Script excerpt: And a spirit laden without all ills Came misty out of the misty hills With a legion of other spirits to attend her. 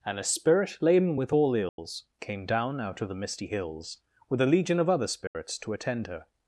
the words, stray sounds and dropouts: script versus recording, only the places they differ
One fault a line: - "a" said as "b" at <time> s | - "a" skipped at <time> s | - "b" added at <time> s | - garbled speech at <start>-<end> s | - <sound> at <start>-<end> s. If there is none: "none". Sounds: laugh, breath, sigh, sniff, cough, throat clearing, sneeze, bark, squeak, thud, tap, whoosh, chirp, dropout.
- "without" said as "with" at 1.2 s
- dropout at 1.7-1.8 s
- "misty" said as "down" at 2.4 s
- dropout at 5.3-5.4 s